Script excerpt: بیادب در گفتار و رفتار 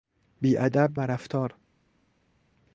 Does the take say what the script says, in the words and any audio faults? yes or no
no